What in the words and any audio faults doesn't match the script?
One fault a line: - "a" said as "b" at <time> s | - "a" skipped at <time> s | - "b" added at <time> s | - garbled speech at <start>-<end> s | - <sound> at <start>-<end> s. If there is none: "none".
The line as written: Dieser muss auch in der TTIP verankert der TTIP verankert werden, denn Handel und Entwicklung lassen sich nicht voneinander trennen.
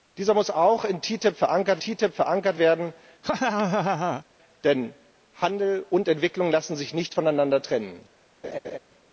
- laugh at 3.2-4.2 s
- laugh at 8.4-8.8 s